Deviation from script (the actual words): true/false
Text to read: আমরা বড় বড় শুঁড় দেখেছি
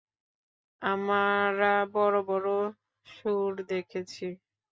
false